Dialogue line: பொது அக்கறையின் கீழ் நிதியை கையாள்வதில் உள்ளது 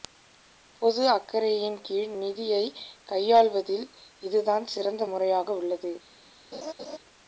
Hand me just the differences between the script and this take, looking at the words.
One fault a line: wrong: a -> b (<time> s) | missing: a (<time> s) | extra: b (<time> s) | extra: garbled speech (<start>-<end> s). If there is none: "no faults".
extra: இதுதான் சிறந்த முறையாக (4.2 s)